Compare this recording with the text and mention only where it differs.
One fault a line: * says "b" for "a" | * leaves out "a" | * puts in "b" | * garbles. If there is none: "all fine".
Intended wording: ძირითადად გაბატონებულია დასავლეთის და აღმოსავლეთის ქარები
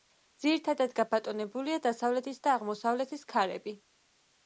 all fine